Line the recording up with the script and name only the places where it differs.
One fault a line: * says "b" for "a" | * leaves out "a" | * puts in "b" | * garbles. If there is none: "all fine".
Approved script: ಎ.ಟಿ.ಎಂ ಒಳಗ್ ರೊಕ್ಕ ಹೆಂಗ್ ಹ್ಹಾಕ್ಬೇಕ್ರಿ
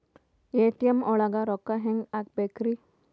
all fine